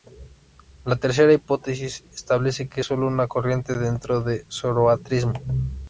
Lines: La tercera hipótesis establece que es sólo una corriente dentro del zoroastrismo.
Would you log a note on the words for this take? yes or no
no